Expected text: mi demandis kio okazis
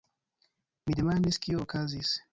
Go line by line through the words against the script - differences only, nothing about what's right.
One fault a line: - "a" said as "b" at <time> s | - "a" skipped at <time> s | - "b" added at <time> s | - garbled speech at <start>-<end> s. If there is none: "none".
none